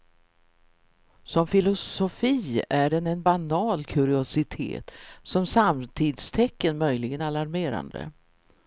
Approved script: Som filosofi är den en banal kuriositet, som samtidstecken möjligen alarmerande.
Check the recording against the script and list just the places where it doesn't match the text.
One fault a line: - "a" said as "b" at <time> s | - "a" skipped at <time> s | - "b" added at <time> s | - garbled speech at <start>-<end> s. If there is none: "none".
none